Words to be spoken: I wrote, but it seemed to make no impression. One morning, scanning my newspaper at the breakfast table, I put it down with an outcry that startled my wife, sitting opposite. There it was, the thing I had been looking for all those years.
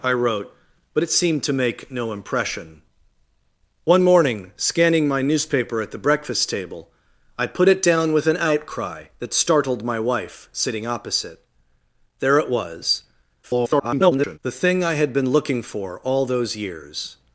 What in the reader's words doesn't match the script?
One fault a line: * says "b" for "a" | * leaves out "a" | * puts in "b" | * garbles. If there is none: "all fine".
* garbles